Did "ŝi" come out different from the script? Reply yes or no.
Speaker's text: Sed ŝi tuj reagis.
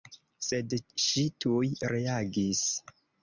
no